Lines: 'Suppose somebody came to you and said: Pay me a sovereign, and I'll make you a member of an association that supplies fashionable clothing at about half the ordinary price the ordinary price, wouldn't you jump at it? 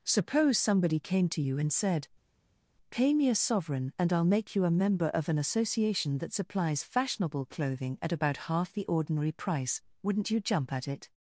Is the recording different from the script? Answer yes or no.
yes